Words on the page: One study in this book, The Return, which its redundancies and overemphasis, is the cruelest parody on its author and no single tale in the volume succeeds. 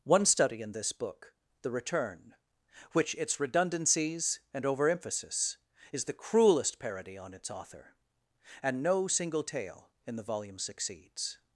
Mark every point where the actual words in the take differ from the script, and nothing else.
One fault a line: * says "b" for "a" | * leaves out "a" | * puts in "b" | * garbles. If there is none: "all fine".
all fine